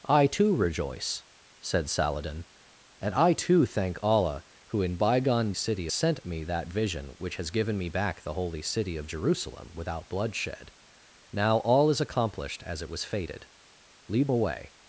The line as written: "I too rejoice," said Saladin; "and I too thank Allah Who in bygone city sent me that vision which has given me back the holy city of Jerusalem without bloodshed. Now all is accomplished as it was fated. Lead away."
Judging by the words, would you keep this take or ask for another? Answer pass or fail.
pass